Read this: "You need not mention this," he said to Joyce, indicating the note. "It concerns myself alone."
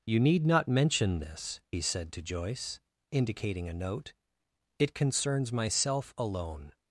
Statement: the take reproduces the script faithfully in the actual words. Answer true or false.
false